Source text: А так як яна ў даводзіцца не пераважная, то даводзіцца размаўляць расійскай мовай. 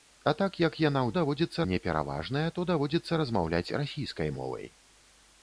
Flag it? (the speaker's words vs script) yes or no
no